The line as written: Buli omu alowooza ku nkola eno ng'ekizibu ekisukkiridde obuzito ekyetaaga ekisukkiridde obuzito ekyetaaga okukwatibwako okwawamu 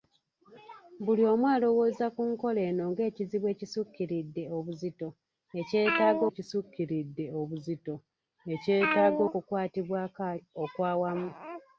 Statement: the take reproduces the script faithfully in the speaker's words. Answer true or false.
true